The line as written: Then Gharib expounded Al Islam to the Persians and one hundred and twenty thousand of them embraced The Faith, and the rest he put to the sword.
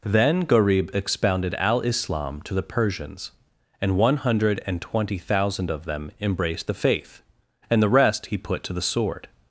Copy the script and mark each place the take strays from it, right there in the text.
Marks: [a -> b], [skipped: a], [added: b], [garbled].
Then Gharib expounded Al Islam to the Persians and one hundred and twenty thousand of them embraced The Faith, and the rest he put to the sword.